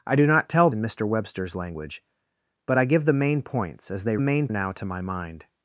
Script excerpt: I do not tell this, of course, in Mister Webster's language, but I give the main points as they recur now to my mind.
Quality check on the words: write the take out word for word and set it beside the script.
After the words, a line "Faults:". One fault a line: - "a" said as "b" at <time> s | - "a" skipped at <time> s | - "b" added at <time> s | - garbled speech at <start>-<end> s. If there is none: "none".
I do not tell in Mister Webster's language, but I give the main points as they main now to my mind.
Faults:
- "this of course" skipped at 0.7 s
- "recur" said as "main" at 4.2 s